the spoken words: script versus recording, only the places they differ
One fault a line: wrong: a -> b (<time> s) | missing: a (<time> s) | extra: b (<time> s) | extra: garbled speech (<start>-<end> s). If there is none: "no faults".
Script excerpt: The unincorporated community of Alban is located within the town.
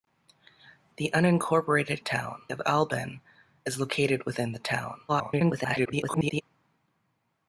wrong: community -> town (2.0 s)
extra: garbled speech (5.1-6.4 s)